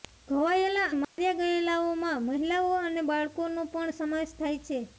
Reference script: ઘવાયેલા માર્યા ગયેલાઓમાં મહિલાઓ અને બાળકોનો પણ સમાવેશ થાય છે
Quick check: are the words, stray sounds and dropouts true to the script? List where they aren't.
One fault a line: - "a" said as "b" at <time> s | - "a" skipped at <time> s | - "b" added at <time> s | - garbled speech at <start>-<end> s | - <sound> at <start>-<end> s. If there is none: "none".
- dropout at 1.0-1.2 s